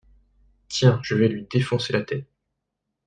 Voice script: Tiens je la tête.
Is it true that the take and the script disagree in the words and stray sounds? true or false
true